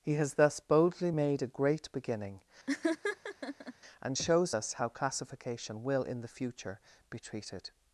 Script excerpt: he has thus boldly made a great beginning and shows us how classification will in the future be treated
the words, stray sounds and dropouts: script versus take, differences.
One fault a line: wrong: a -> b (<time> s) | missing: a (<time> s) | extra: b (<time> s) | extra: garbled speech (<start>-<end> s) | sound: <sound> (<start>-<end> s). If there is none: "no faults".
sound: laugh (2.7-3.7 s)